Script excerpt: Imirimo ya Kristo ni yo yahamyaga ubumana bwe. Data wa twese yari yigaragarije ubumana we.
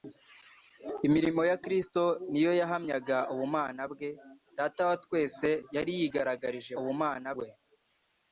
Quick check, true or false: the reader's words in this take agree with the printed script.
true